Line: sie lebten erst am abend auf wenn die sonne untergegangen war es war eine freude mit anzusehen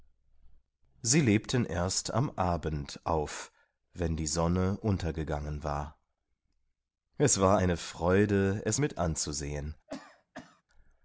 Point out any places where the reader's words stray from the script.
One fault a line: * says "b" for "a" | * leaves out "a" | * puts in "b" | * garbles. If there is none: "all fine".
* puts in "es"